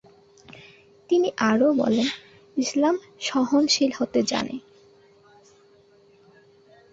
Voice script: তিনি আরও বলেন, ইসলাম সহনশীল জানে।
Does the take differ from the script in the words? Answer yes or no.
yes